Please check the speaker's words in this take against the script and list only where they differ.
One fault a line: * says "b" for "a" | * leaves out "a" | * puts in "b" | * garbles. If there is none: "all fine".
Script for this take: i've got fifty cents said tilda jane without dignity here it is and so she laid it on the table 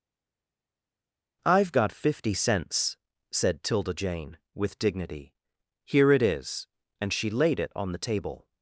* says "with" for "without"
* leaves out "so"